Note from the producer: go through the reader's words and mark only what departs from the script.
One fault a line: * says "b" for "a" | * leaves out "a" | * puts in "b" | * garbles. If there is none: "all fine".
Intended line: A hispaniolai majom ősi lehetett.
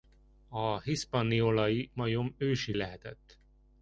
all fine